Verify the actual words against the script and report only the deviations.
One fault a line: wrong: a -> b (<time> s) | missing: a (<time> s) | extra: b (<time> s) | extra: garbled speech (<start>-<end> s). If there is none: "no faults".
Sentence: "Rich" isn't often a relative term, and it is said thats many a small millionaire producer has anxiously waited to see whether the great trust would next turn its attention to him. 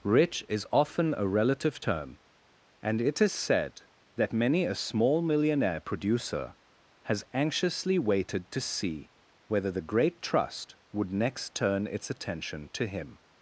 wrong: isn't -> is (0.5 s)
wrong: thats -> that (4.1 s)